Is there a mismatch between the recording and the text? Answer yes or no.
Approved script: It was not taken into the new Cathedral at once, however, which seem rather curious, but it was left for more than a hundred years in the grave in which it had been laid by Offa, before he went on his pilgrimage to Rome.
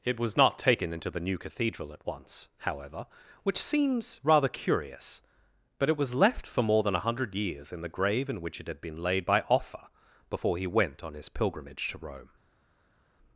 yes